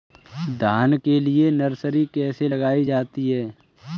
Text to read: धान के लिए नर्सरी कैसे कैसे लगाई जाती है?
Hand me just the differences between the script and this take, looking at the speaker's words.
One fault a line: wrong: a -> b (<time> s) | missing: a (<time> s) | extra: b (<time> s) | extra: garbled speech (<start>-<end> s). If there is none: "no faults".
missing: कैसे (2.5 s)